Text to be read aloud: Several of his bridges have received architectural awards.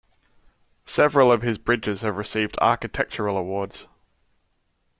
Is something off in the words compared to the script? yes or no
no